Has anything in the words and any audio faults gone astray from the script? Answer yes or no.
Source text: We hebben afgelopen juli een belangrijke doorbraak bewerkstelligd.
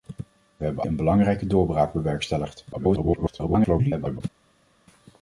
yes